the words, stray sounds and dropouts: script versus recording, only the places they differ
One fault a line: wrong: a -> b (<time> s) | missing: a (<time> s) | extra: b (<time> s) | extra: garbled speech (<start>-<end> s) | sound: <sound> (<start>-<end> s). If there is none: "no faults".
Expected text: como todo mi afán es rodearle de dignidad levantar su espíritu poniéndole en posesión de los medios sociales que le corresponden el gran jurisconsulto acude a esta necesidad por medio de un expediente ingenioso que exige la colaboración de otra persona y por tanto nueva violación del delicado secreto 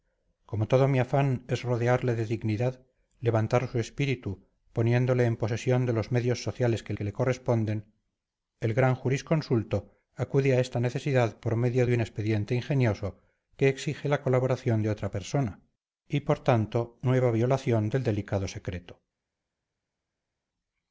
extra: que (6.9 s)